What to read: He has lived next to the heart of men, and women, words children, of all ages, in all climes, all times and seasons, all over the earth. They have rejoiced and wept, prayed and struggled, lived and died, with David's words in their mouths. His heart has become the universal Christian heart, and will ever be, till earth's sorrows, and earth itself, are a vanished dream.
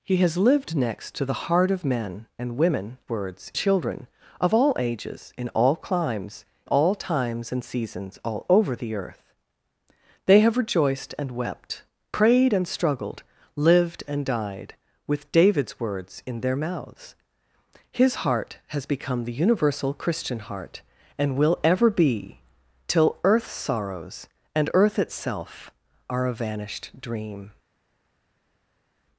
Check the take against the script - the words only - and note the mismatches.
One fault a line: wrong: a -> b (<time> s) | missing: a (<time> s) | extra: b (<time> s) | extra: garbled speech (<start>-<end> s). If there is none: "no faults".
no faults